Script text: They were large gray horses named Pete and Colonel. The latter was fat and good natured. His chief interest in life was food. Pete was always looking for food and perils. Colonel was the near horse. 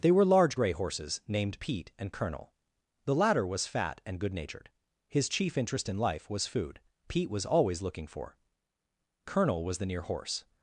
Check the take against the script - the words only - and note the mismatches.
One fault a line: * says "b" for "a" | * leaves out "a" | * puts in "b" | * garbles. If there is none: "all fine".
* leaves out "food and perils"